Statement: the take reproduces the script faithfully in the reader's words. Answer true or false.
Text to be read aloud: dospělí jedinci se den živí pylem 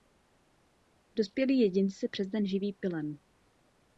false